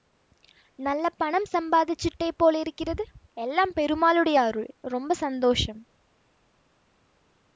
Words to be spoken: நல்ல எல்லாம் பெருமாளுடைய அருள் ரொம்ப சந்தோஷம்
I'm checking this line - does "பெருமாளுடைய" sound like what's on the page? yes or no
yes